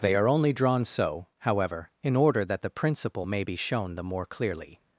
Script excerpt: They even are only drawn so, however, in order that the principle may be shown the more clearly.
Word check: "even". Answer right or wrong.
wrong